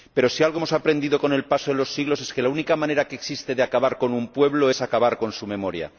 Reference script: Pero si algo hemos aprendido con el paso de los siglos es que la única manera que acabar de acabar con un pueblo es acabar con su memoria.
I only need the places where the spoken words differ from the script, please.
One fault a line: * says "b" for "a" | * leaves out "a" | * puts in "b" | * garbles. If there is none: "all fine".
* says "existe" for "acabar"